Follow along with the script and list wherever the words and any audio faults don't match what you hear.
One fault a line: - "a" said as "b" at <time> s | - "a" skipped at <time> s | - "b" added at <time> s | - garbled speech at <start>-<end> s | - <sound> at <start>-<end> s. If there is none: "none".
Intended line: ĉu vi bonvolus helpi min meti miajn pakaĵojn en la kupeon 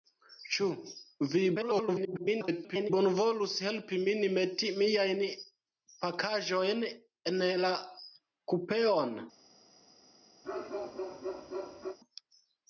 - garbled speech at 1.5-2.9 s
- bark at 10.4-12.0 s